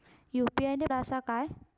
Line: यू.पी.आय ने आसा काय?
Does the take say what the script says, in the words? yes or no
yes